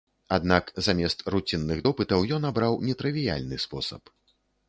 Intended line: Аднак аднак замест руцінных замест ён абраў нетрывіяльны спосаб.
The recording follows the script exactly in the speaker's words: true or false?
false